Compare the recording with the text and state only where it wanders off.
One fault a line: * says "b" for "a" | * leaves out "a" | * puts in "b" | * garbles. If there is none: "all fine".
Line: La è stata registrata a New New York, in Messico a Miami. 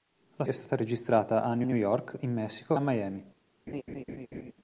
all fine